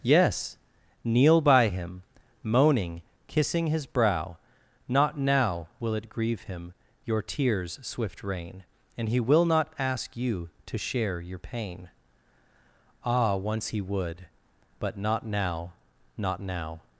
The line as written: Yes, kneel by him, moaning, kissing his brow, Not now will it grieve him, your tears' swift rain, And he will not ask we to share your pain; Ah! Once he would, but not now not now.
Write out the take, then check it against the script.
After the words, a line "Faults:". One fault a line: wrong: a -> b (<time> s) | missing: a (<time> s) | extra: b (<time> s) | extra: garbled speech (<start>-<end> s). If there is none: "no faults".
Yes, kneel by him, moaning, kissing his brow, Not now will it grieve him, your tears' swift rain, And he will not ask you to share your pain; Ah! Once he would, but not now not now.
Faults:
wrong: we -> you (10.1 s)